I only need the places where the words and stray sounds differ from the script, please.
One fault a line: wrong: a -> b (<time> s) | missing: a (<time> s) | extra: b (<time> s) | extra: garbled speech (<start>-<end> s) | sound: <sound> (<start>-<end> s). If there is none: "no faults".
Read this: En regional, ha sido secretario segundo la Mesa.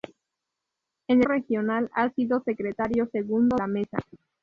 no faults